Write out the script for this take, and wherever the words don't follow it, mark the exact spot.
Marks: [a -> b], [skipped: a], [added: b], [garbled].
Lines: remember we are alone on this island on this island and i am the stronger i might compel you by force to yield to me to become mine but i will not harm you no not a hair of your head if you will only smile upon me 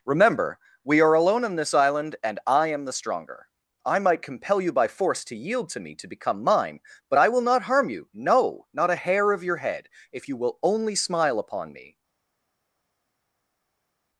remember we are alone on this island [skipped: on this island] and i am the stronger i might compel you by force to yield to me to become mine but i will not harm you no not a hair of your head if you will only smile upon me